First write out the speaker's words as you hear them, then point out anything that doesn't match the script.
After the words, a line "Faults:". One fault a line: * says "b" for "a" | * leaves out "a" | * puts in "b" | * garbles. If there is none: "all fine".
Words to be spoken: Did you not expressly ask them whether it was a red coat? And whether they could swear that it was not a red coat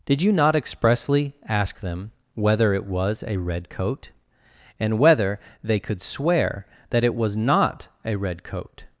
Did you not expressly ask them whether it was a red coat? And whether they could swear that it was not a red coat
Faults:
all fine